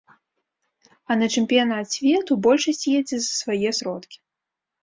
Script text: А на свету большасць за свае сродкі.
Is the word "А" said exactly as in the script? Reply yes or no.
yes